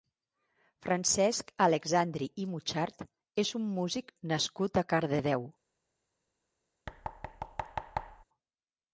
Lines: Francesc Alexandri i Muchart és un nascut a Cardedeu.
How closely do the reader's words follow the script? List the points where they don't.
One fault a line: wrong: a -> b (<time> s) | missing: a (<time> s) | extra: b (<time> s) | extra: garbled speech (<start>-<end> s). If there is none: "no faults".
extra: músic (3.8 s)